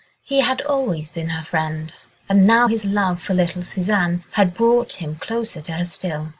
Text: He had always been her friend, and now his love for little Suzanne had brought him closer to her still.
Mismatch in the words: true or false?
false